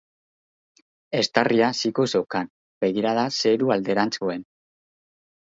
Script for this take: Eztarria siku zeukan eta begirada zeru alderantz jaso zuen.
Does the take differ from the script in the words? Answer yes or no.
yes